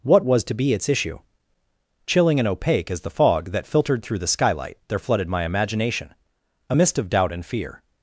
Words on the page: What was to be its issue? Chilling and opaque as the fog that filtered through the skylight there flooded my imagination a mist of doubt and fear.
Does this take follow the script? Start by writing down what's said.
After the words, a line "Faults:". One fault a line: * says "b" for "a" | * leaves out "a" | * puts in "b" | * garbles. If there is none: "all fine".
What was to be its issue? Chilling and opaque as the fog that filtered through the skylight there flooded my imagination a mist of doubt and fear.
Faults:
all fine